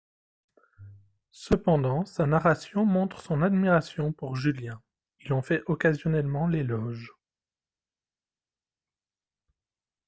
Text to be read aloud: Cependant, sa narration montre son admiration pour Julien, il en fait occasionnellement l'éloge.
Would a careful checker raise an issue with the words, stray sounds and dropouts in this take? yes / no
no